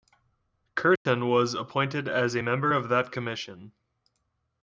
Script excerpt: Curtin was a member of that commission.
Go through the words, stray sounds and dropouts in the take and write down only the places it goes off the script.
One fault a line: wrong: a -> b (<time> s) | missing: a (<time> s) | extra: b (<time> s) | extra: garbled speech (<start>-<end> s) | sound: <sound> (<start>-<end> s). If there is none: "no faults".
sound: dropout (1.0-1.1 s)
extra: appointed as (1.5 s)